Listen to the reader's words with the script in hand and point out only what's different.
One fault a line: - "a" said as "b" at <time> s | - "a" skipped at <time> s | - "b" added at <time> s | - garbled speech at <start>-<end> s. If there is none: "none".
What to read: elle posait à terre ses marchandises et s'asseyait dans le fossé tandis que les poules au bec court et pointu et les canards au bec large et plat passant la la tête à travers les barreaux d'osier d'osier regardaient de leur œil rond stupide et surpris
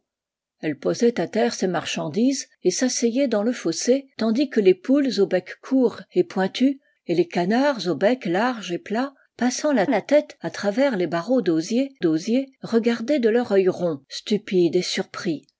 none